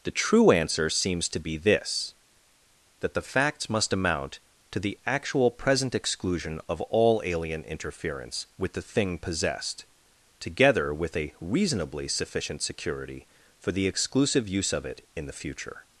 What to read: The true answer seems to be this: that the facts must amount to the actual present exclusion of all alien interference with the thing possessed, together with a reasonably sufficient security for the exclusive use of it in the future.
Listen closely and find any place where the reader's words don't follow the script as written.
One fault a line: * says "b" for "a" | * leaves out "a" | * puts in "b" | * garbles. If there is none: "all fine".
all fine